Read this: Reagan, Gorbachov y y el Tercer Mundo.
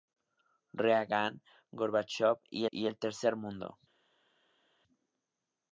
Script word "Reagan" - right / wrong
right